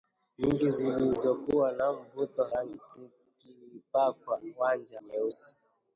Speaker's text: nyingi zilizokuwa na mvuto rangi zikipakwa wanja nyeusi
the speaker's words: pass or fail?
pass